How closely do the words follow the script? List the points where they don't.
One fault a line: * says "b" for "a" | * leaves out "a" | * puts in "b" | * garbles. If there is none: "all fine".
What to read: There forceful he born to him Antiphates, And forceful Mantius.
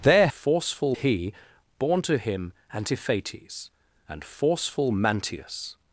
all fine